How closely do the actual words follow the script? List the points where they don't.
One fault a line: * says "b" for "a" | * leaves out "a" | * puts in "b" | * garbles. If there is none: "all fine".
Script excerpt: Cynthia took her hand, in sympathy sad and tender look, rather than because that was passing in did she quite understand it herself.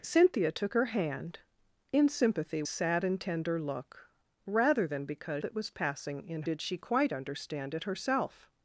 all fine